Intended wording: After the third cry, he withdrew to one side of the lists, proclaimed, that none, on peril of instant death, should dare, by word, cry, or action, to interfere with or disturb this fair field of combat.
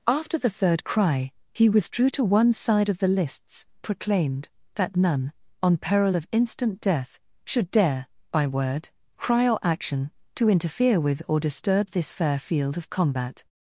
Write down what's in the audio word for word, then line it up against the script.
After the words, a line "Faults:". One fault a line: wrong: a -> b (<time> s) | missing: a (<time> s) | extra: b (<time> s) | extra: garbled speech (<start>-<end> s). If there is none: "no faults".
After the third cry, he withdrew to one side of the lists, proclaimed, that none, on peril of instant death, should dare, by word, cry, or action, to interfere with or disturb this fair field of combat.
Faults:
no faults